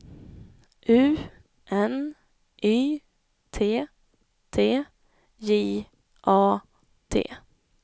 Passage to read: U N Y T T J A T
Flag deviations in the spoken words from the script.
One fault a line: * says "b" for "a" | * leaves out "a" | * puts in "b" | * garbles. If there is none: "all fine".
all fine